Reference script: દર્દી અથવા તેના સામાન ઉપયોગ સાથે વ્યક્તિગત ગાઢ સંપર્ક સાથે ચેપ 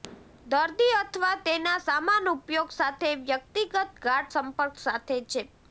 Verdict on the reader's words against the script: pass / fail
pass